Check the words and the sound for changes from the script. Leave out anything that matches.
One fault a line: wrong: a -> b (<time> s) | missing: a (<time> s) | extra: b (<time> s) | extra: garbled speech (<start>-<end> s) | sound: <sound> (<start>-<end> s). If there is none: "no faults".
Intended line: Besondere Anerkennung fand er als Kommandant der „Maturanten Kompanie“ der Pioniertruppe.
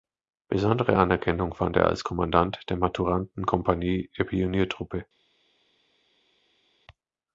no faults